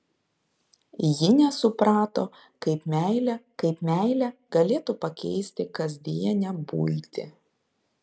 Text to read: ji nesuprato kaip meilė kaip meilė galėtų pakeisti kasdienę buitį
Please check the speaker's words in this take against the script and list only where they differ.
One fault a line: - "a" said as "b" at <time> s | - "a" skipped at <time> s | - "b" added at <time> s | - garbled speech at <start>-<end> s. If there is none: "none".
none